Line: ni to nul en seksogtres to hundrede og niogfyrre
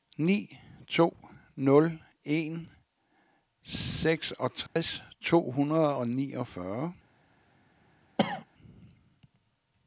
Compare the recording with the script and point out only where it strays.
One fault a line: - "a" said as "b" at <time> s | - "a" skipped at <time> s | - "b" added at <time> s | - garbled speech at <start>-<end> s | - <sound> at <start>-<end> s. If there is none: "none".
- dropout at 4.7-4.8 s
- cough at 8.2-8.4 s